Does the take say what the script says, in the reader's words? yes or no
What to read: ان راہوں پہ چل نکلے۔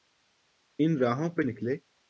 no